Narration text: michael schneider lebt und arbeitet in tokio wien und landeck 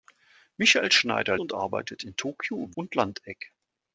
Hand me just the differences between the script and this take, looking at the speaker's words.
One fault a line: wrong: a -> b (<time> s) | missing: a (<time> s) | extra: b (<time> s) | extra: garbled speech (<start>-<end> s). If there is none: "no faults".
missing: lebt (1.4 s)
missing: wien (2.7 s)